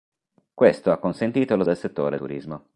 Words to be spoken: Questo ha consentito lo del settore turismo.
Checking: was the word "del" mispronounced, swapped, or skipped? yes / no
no